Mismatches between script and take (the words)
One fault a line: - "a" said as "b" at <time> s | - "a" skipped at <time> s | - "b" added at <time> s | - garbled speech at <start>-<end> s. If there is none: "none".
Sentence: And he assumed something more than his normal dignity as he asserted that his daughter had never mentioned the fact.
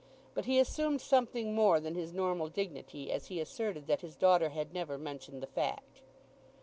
- "And" said as "But" at 0.3 s